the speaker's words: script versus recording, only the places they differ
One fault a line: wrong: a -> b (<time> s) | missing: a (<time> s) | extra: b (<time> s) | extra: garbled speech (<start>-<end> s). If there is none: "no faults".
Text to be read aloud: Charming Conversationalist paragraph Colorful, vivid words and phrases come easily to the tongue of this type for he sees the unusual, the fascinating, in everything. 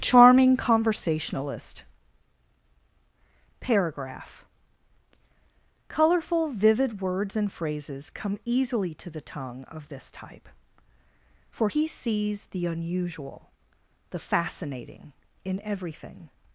no faults